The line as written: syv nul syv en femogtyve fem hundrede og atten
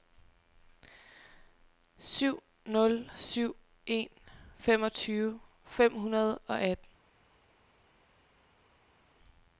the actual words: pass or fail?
pass